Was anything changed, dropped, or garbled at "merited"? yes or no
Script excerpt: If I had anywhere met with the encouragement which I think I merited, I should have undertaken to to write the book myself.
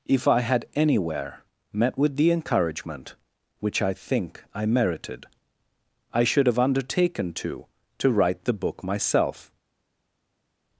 no